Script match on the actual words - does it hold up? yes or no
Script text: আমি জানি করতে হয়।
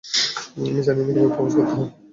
no